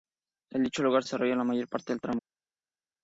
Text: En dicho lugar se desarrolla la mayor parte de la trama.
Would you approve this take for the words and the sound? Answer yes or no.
no